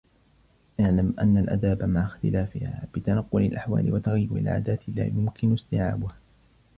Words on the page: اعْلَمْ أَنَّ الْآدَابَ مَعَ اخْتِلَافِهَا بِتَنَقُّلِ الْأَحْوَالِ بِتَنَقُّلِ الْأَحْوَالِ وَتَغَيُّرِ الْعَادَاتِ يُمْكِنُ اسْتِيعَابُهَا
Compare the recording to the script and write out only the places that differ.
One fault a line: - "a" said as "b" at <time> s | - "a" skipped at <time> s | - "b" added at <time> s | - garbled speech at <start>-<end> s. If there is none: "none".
- "بِتَنَقُّلِ الْأَحْوَالِ" skipped at 3.9 s
- "لَا" added at 5.0 s